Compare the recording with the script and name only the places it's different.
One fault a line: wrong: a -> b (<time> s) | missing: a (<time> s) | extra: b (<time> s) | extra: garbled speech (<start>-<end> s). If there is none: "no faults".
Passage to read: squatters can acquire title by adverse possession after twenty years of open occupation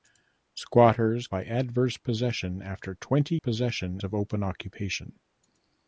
missing: can acquire title (1.3 s)
wrong: years -> possession (3.3 s)